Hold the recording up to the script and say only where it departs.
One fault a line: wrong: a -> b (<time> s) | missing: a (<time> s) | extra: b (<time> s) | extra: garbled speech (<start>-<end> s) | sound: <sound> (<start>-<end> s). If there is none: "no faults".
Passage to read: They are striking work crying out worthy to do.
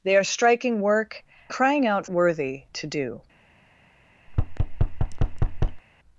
sound: thud (4.3-5.8 s)